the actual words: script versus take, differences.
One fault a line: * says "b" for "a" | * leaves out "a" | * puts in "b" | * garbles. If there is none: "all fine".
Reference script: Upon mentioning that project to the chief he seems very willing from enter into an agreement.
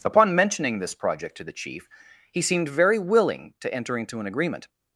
* says "this" for "that"
* says "seemed" for "seems"
* says "to" for "from"